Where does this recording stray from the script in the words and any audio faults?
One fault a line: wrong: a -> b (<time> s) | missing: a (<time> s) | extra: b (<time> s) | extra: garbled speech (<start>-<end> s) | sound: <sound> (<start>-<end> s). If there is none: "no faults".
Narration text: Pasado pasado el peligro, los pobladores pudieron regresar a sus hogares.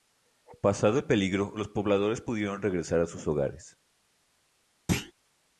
missing: pasado (1.0 s)
sound: thud (4.9-5.1 s)